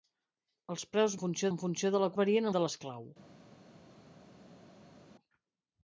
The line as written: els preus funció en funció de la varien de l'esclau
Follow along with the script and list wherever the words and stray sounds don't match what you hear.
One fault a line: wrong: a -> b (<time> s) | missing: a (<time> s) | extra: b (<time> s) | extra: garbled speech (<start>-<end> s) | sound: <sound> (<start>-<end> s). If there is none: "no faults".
no faults